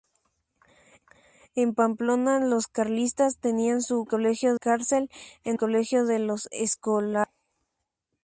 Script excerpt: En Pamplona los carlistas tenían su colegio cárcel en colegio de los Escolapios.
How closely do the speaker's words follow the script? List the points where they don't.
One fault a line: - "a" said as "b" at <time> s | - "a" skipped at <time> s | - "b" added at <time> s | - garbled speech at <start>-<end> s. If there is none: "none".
none